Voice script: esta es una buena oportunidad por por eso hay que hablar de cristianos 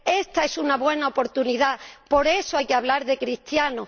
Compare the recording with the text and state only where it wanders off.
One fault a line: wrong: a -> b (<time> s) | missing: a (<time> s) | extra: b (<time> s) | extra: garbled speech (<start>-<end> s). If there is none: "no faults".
missing: por (2.3 s)